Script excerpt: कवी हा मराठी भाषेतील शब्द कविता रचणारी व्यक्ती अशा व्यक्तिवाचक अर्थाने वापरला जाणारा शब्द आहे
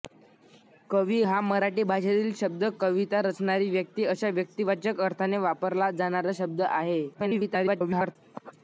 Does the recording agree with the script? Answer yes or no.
no